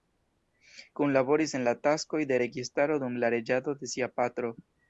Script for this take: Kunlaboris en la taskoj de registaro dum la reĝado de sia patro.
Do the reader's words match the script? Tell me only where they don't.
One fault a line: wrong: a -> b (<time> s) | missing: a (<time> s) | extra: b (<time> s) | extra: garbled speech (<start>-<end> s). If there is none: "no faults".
no faults